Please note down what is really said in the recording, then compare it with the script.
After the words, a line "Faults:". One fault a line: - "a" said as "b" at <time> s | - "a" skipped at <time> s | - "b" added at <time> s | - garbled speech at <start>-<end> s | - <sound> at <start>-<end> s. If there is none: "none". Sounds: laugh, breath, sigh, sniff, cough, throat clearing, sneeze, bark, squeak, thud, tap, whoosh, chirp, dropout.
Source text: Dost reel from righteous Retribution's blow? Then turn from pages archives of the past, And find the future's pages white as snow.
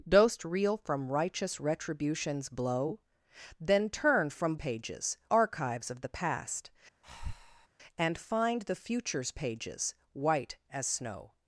Dost reel from righteous Retribution's blow? Then turn from pages archives of the past, And find the future's pages white as snow.
Faults:
- breath at 7.0-7.7 s